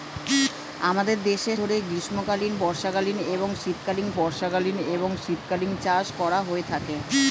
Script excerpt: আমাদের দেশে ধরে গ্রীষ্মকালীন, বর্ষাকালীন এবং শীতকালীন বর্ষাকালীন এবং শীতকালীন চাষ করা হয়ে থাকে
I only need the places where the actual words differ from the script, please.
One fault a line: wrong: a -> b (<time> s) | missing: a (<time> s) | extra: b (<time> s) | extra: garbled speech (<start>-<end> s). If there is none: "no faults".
no faults